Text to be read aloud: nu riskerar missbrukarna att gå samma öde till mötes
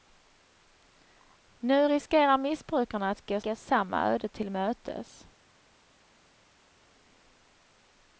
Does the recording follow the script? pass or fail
fail